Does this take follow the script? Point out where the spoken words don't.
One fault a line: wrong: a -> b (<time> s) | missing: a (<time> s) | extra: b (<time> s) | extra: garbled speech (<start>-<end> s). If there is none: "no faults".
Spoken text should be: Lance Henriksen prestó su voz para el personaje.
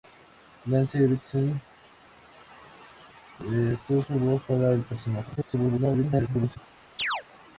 extra: garbled speech (5.3-6.6 s)